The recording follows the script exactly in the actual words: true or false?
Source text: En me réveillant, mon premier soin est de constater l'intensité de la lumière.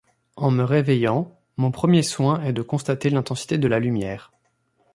true